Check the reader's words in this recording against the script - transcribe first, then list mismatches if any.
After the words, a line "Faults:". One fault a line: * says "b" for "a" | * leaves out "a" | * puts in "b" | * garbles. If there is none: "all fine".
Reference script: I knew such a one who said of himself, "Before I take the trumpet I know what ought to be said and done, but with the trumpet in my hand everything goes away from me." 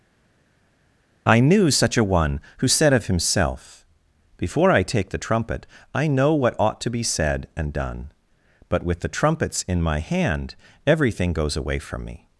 I knew such a one who said of himself, "Before I take the trumpet I know what ought to be said and done, but with the trumpets in my hand everything goes away from me."
Faults:
* says "trumpets" for "trumpet"